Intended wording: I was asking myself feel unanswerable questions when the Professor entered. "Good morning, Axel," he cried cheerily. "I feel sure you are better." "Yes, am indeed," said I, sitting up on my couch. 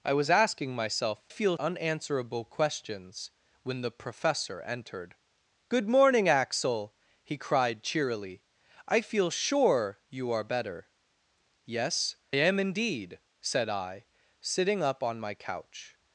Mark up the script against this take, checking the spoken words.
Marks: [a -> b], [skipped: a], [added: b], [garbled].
I was asking myself feel unanswerable questions when the Professor entered. "Good morning, Axel," he cried cheerily. "I feel sure you are better." "Yes, am indeed," said I, sitting up on my couch.